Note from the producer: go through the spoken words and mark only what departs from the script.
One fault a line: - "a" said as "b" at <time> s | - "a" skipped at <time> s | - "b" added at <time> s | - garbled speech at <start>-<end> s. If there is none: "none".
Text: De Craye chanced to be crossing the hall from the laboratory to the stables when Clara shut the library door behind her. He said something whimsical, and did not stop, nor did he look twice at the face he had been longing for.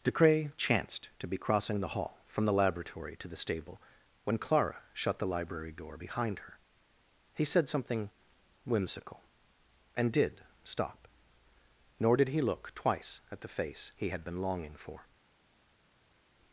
- "stables" said as "stable" at 3.4 s
- "not" skipped at 10.4 s